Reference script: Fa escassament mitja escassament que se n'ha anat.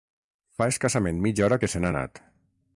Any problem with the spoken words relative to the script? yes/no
yes